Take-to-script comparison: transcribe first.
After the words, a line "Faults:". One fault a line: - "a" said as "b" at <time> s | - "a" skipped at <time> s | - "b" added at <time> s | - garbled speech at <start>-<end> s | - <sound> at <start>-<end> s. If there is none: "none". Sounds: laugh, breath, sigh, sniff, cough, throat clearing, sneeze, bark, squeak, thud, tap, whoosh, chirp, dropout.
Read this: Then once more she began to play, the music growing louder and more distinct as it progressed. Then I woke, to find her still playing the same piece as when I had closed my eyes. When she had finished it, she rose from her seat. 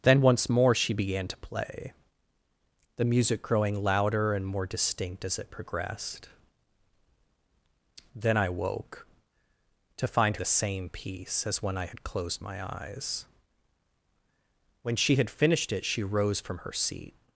Then once more she began to play, the music growing louder and more distinct as it progressed. Then I woke, to find the same piece as when I had closed my eyes. When she had finished it, she rose from her seat.
Faults:
- "her still playing" skipped at 10.4 s